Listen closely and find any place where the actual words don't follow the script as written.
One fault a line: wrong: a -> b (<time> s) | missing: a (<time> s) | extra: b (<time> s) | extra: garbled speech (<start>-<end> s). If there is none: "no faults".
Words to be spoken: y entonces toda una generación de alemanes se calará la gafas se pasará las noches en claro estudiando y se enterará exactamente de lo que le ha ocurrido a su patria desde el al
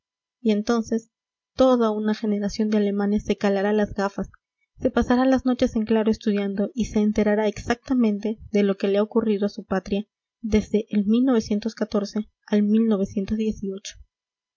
wrong: la -> las (3.7 s)